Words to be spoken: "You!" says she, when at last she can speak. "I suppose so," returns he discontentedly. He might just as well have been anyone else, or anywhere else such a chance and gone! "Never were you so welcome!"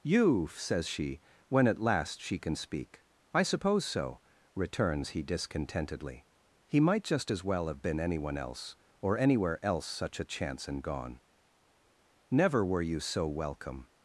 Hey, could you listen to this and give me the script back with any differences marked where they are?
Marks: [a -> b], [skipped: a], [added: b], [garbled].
"You!" says she, when at last she can speak. "I suppose so," returns he discontentedly. He might just as well have been anyone else, or anywhere else such a chance and gone! "Never were you so welcome!"